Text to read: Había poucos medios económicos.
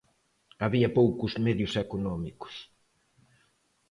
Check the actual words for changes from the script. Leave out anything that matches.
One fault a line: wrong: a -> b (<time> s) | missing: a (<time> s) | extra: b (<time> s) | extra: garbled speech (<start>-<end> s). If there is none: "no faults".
no faults